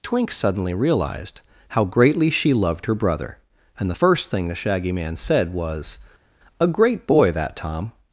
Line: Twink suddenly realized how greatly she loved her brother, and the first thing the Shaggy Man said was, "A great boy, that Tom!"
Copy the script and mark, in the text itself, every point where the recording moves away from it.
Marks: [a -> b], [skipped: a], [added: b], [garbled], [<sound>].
Twink suddenly realized how greatly she loved her brother, and the first thing the Shaggy Man said was, "A great boy, that Tom!"